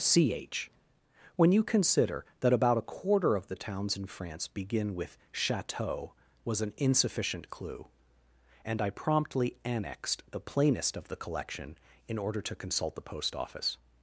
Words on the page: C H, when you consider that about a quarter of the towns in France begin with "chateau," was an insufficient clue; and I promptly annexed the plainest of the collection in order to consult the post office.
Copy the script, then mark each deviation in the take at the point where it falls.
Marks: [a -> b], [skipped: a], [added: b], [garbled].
C H, when you consider that about a quarter of the towns in France begin with "chateau," was an insufficient clue; and I promptly annexed the plainest of the collection in order to consult the post office.